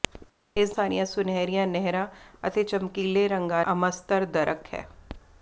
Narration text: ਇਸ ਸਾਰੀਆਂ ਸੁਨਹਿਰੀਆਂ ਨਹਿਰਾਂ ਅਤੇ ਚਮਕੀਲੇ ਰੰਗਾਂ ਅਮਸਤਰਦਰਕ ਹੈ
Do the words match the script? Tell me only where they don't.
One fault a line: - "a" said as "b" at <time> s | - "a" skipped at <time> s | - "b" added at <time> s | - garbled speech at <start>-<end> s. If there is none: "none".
none